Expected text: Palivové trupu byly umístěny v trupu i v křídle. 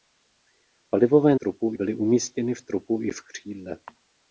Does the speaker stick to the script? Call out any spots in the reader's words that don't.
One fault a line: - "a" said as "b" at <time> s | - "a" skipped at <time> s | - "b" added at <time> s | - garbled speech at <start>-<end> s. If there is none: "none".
none